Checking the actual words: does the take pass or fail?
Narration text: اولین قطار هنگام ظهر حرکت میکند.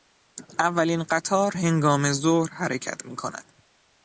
pass